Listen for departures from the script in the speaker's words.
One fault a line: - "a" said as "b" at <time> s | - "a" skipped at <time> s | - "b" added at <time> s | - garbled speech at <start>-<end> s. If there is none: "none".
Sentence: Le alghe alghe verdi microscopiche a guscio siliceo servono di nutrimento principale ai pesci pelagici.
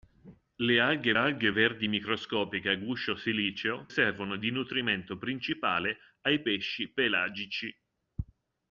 none